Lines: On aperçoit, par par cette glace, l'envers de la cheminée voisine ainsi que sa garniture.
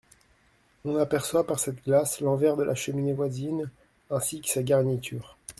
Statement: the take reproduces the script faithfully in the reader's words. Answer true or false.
false